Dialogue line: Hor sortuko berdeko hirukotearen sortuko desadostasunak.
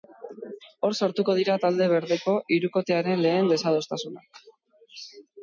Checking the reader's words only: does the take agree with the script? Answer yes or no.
no